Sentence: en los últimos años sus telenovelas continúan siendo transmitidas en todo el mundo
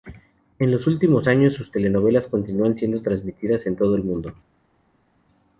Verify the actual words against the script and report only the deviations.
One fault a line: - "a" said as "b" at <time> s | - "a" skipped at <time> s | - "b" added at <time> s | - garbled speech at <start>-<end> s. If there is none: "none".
none